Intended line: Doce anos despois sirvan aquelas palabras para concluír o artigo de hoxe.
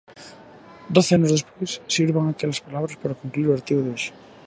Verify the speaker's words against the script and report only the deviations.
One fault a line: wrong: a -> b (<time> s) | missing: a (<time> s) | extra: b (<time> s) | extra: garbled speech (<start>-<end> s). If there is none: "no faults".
no faults